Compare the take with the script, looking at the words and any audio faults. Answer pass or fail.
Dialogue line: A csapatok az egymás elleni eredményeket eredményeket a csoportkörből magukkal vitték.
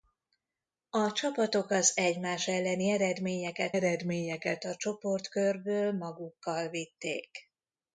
pass